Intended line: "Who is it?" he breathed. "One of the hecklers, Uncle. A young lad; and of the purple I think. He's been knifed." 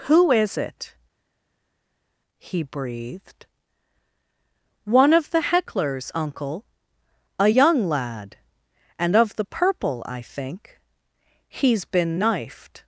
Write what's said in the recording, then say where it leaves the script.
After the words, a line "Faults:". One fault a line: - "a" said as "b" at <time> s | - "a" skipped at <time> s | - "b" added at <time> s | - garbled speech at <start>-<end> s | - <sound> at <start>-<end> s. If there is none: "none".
"Who is it?" he breathed. "One of the hecklers, Uncle. A young lad; and of the purple I think. He's been knifed."
Faults:
none